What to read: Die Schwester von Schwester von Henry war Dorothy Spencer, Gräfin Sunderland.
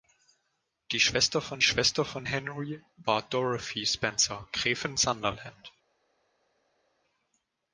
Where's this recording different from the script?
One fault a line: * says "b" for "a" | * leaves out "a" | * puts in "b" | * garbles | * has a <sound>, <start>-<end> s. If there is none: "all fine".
all fine